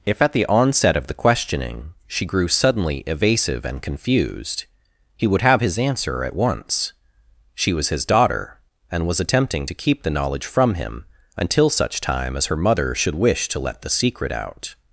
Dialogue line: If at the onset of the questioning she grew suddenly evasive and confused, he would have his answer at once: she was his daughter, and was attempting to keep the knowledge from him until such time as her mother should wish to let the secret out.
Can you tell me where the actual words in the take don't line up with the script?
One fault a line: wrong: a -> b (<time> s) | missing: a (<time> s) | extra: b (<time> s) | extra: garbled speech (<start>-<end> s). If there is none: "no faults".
no faults